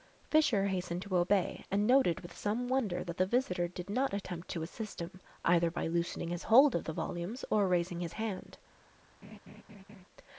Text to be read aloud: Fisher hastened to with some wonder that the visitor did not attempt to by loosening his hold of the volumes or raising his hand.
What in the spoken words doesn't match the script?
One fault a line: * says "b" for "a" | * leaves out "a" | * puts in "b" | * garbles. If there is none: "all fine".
* puts in "obey and noted"
* puts in "assist him either"